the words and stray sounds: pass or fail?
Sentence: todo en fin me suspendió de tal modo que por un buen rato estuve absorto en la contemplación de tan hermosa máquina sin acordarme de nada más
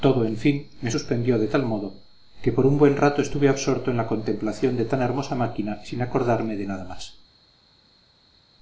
pass